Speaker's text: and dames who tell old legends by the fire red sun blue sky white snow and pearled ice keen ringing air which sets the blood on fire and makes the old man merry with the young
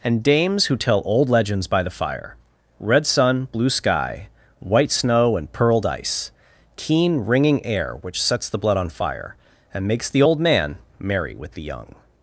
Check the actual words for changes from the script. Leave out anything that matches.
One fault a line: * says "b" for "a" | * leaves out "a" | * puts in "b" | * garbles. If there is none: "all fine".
all fine